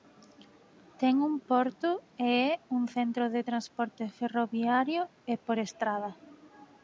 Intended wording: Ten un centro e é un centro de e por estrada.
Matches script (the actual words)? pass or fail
fail